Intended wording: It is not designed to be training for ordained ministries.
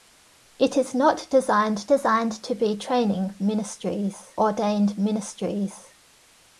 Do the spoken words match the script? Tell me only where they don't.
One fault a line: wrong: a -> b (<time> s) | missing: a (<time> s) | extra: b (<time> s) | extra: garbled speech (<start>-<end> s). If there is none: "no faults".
extra: designed (1.9 s)
wrong: for -> ministries (3.4 s)